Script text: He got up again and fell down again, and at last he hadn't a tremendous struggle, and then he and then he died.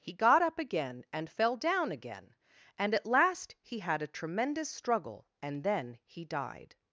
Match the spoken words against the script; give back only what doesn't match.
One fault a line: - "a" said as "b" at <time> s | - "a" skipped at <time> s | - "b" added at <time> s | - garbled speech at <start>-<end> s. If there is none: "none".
- "hadn't" said as "had" at 3.8 s
- "and then he" skipped at 6.2 s